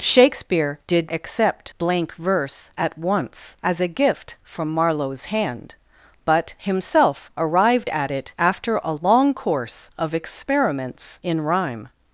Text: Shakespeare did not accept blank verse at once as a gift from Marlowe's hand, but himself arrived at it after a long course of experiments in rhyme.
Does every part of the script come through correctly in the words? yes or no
no